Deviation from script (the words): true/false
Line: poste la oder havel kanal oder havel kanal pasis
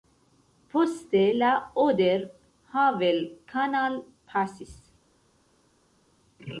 true